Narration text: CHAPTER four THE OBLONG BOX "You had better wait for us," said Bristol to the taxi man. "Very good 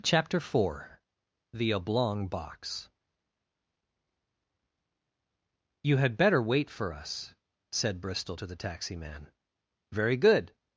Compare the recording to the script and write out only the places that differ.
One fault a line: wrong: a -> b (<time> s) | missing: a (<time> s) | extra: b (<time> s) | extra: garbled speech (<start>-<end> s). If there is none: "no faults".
no faults